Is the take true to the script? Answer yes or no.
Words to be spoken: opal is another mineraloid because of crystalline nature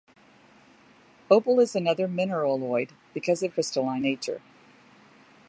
yes